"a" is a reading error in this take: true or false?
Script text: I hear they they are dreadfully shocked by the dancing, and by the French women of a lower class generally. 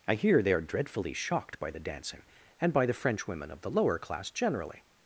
true